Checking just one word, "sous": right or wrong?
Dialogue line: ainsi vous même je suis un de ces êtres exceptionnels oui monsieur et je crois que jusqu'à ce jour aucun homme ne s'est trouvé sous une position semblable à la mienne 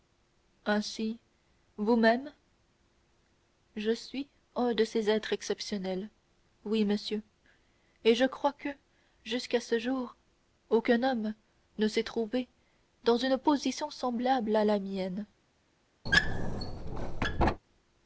wrong